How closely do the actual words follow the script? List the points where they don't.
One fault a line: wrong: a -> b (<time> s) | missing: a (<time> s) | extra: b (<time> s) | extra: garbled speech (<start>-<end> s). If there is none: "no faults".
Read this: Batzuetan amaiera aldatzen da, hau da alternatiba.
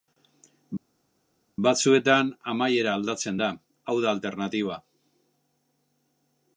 no faults